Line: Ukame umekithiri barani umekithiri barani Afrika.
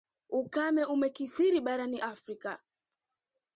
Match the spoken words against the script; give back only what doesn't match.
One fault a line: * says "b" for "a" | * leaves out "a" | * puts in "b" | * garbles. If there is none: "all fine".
* leaves out "umekithiri barani"